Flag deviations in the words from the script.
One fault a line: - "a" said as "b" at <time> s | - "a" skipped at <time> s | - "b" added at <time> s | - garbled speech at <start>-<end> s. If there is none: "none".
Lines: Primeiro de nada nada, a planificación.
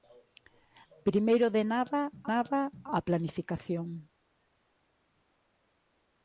none